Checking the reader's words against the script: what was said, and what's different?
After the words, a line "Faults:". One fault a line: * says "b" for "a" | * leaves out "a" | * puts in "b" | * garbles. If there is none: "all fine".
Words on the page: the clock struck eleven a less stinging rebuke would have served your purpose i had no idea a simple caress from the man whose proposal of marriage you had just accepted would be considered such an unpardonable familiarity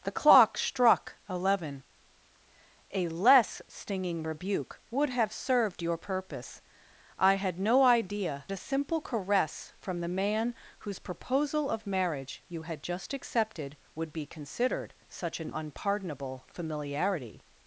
the clock struck eleven a less stinging rebuke would have served your purpose i had no idea a simple caress from the man whose proposal of marriage you had just accepted would be considered such an unpardonable familiarity
Faults:
all fine